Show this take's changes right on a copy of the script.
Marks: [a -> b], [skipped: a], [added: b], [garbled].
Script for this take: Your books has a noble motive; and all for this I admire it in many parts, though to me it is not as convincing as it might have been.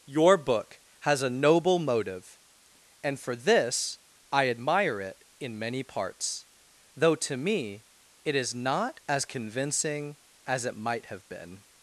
Your [books -> book] has a noble motive; and [skipped: all] for this I admire it in many parts, though to me it is not as convincing as it might have been.